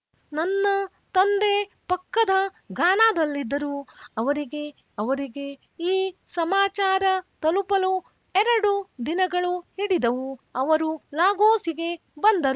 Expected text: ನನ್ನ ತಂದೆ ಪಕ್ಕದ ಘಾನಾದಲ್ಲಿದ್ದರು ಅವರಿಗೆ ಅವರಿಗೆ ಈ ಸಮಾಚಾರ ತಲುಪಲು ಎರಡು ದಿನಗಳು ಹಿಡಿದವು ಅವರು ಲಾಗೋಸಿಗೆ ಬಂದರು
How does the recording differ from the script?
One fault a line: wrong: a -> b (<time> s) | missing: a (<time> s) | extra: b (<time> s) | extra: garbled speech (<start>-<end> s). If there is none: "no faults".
no faults